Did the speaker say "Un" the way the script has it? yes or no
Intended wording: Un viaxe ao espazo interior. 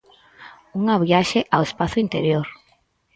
no